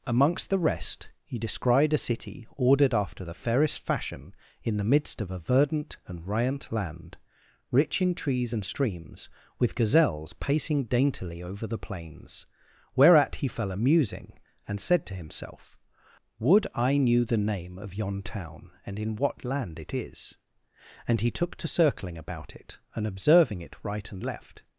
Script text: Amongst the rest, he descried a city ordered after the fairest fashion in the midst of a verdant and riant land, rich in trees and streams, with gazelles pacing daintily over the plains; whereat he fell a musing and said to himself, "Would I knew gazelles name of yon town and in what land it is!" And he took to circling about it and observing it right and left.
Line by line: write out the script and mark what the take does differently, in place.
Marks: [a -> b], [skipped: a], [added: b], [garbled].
Amongst the rest, he descried a city ordered after the fairest fashion in the midst of a verdant and riant land, rich in trees and streams, with gazelles pacing daintily over the plains; whereat he fell a musing and said to himself, "Would I knew [gazelles -> the] name of yon town and in what land it is!" And he took to circling about it and observing it right and left.